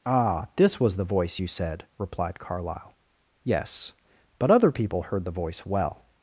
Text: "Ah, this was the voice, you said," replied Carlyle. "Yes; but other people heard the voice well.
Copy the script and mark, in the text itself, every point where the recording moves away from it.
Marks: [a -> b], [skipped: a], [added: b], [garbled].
"Ah, this was the voice, you said," replied Carlyle. "Yes; but other people heard the voice well.